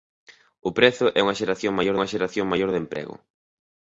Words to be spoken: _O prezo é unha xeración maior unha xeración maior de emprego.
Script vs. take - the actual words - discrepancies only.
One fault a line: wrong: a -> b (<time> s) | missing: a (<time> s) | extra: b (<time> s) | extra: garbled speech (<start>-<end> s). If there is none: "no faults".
no faults